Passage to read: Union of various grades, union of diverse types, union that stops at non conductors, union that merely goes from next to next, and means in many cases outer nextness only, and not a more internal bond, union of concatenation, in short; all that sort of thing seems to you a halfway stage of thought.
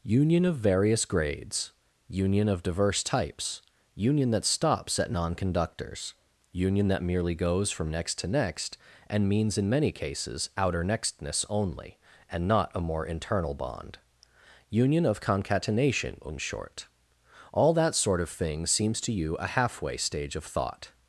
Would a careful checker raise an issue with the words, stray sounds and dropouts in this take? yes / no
no